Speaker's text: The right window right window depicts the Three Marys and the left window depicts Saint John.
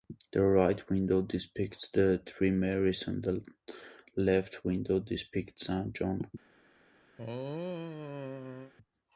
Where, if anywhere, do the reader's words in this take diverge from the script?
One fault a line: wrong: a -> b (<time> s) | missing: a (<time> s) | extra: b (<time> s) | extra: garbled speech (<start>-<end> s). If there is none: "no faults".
missing: right window (1.2 s)